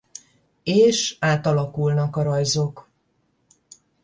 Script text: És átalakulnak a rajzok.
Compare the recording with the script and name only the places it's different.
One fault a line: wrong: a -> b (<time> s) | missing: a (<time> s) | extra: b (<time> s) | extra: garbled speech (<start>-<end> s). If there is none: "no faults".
no faults